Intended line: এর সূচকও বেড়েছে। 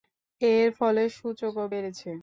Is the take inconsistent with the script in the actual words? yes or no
yes